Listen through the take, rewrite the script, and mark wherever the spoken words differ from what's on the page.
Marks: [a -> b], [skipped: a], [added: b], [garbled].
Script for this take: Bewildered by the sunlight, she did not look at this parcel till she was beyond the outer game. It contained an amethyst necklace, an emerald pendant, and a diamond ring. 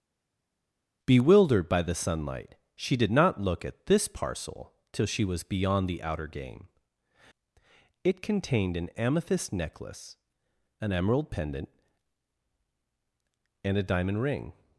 Bewildered by the sunlight, she did not look at this parcel till she was beyond the outer game. It contained an amethyst necklace, an emerald pendant, and a diamond ring.